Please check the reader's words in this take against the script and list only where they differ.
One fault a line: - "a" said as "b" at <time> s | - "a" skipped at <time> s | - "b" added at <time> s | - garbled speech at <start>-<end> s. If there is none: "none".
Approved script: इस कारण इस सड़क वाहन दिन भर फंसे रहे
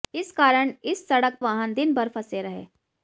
none